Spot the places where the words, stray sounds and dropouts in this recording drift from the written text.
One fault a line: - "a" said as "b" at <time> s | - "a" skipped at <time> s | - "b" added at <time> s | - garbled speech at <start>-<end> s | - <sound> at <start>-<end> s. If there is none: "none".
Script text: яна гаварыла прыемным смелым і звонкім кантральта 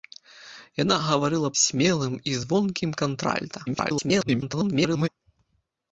- "прыемным" skipped at 1.5 s
- garbled speech at 3.7-5.1 s